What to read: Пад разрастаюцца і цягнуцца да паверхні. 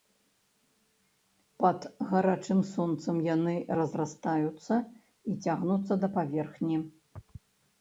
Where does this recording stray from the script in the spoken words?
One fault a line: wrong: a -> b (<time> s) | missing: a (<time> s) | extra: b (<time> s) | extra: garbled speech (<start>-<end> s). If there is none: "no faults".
extra: гарачым сонцам яны (2.1 s)